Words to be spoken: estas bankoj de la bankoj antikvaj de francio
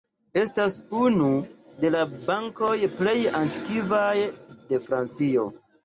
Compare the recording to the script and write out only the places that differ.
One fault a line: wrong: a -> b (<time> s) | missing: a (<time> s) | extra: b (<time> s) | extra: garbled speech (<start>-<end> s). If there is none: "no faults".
wrong: bankoj -> unu (1.0 s)
extra: plej (3.0 s)